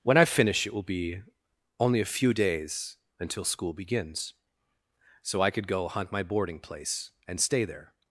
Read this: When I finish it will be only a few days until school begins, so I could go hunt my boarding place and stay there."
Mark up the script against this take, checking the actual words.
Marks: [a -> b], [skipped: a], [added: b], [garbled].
When I finish it will be only a few days until school begins, so I could go hunt my boarding place and stay there."